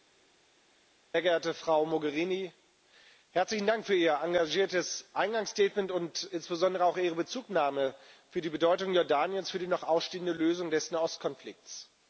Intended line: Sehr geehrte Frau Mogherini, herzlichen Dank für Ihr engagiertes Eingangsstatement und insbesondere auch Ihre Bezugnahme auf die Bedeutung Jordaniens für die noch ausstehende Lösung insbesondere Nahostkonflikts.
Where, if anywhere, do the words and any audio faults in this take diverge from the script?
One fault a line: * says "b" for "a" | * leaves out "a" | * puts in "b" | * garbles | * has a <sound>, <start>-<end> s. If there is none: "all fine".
* says "des" for "insbesondere"